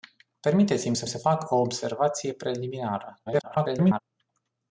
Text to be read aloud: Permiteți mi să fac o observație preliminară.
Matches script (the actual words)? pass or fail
fail